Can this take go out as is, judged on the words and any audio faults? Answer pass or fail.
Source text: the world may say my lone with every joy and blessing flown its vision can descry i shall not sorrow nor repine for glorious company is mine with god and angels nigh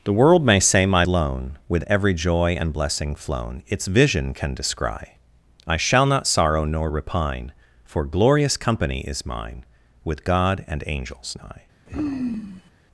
fail